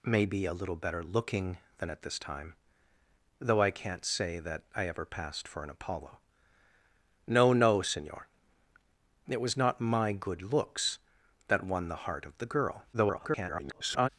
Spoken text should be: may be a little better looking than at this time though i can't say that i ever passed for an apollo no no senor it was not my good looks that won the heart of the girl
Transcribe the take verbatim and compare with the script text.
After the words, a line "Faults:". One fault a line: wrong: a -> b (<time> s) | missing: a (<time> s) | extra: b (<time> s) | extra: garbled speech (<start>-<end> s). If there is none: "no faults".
may be a little better looking than at this time though i can't say that i ever passed for an apollo no no senor it was not my good looks that won the heart of the girl [garbled]
Faults:
extra: garbled speech (12.9-14.1 s)